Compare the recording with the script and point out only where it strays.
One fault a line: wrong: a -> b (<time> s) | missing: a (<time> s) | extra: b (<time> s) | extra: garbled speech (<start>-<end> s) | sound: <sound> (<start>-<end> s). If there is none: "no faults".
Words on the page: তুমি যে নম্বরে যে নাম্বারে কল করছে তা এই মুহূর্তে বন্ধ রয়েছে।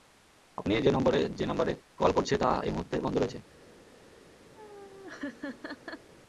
wrong: তুমি -> আপনি (0.6 s)
sound: laugh (4.6-6.1 s)